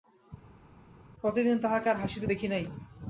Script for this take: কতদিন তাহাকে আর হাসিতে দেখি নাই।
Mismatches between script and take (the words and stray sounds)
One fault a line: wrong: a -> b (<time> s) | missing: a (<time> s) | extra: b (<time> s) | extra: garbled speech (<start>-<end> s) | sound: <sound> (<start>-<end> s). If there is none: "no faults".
no faults